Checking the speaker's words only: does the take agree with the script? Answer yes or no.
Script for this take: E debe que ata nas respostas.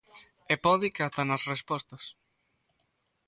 no